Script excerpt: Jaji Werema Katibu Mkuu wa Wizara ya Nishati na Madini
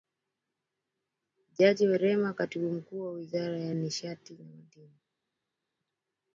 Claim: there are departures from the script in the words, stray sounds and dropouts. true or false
false